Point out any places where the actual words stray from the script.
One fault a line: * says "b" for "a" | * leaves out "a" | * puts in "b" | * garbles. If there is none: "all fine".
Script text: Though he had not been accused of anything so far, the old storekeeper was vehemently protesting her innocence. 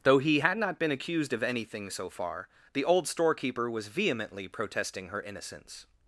all fine